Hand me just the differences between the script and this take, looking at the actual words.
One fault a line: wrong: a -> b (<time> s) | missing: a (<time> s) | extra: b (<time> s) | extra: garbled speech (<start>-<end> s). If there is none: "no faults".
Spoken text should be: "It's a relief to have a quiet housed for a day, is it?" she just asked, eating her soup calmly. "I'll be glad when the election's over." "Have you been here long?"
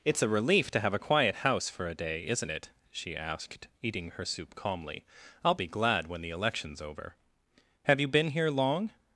wrong: housed -> house (1.4 s)
wrong: is -> isn't (2.3 s)
missing: just (3.1 s)